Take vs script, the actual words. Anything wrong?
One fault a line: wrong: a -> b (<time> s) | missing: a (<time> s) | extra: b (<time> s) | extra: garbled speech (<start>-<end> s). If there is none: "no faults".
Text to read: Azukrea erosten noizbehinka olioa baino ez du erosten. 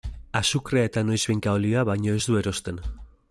wrong: erosten -> eta (0.9 s)